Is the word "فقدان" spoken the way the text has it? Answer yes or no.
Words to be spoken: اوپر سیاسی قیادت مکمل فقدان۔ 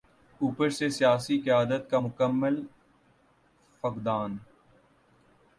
yes